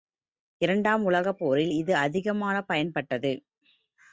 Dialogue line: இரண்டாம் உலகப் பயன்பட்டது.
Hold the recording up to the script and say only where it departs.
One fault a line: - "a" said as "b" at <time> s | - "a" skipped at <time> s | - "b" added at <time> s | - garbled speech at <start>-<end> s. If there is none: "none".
- "போரில் இது அதிகமாகப்" added at 1.4 s